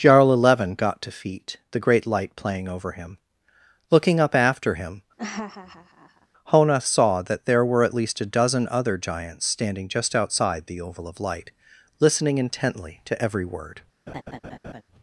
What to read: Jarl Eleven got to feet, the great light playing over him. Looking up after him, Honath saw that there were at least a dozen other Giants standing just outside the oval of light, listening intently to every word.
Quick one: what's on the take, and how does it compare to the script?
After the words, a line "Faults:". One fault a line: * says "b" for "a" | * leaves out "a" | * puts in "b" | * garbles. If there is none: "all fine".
Jarl Eleven got to feet, the great light playing over him. Looking up after him, Honath saw that there were at least a dozen other Giants standing just outside the oval of light, listening intently to every word.
Faults:
all fine